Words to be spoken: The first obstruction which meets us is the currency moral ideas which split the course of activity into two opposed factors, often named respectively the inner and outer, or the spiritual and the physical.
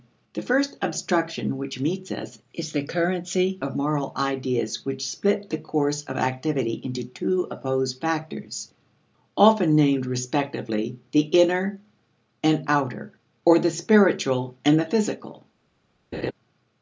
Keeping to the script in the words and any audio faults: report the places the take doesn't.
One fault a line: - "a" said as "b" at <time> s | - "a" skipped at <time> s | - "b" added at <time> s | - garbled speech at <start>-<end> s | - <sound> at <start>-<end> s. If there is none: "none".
- "of" added at 3.6 s
- laugh at 16.1-16.3 s